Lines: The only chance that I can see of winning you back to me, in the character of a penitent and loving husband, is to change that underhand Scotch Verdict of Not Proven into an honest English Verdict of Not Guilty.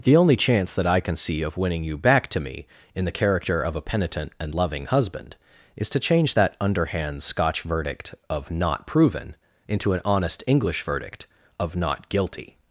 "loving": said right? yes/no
yes